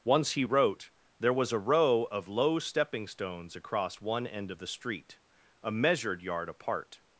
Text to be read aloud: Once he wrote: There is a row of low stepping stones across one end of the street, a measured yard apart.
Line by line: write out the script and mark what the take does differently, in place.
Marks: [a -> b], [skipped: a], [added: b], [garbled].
Once he wrote: There [is -> was] a row of low stepping stones across one end of the street, a measured yard apart.